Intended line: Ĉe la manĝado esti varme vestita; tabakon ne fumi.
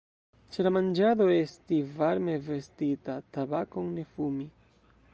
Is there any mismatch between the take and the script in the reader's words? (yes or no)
no